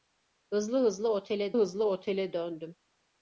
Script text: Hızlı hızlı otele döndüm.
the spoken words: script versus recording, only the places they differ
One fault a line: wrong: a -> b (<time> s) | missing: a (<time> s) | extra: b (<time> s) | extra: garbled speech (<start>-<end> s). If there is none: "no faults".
extra: hızlı otele (1.6 s)